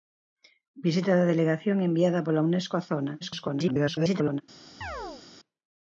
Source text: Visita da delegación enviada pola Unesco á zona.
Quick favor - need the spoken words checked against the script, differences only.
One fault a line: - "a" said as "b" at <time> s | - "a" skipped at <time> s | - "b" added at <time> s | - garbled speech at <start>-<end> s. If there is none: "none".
- garbled speech at 3.2-4.4 s